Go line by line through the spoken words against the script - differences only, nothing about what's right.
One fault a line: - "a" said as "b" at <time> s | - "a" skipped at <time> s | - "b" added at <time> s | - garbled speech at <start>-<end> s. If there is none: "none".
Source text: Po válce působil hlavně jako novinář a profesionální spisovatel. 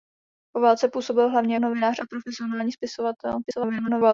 - "jako" skipped at 1.6 s
- garbled speech at 3.4-4.1 s